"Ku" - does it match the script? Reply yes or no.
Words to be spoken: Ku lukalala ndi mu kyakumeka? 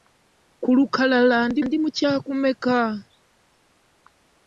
yes